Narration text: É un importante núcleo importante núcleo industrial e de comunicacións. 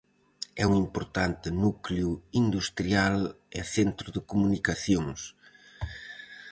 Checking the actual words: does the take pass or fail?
fail